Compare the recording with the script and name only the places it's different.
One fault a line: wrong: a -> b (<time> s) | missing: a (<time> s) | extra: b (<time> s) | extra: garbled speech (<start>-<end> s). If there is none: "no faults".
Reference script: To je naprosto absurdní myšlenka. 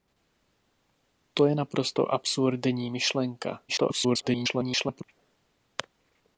extra: garbled speech (3.7-5.0 s)